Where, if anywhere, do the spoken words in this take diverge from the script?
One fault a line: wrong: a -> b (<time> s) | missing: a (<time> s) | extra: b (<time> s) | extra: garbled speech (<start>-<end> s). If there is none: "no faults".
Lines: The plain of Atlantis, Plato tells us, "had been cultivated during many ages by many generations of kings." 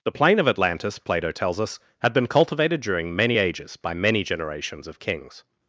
no faults